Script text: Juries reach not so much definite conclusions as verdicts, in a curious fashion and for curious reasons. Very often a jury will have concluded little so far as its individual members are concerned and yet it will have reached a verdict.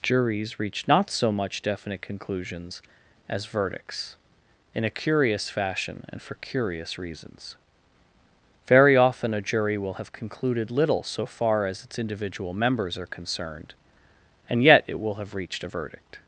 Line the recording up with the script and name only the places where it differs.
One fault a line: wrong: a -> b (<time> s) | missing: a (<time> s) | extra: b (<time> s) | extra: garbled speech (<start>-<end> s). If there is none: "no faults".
no faults